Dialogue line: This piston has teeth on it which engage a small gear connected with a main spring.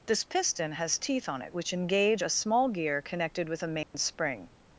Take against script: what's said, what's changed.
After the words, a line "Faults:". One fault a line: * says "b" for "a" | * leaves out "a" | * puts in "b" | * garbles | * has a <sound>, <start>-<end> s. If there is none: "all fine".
This piston has teeth on it which engage a small gear connected with a main spring.
Faults:
* has a dropout, 3.8-3.9 s